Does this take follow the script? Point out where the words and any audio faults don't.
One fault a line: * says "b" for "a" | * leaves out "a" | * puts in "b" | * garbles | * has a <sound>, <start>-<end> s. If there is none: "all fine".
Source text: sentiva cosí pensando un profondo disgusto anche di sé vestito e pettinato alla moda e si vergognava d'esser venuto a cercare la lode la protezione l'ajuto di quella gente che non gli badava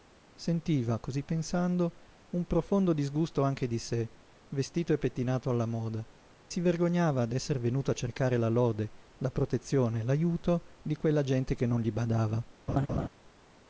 * leaves out "e"
* has a laugh, 12.7-13.1 s